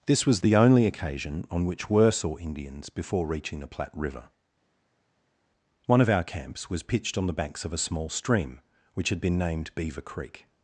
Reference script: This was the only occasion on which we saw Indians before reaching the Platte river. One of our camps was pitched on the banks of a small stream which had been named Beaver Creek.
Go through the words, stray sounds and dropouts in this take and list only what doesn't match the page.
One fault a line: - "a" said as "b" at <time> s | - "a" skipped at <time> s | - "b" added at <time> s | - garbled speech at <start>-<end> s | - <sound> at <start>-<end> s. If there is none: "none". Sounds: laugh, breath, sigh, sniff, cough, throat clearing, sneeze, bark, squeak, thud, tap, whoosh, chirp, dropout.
- "we" said as "were" at 1.9 s